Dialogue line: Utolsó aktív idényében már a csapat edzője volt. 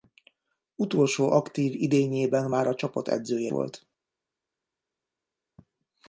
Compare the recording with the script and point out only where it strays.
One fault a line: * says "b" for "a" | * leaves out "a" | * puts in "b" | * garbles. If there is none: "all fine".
all fine